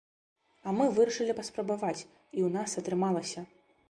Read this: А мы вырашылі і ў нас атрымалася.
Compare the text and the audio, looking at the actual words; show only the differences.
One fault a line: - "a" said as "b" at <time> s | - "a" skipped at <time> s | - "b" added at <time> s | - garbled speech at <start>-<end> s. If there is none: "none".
- "паспрабаваць" added at 1.4 s